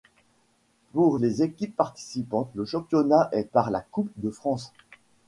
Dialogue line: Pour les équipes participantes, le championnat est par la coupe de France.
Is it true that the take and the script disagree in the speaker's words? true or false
false